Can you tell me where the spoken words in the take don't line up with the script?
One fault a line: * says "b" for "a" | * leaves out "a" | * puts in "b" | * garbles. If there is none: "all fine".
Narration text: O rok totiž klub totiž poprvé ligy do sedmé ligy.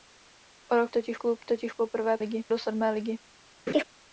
all fine